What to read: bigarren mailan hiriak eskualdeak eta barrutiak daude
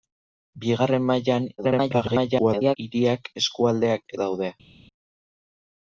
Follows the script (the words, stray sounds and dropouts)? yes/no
no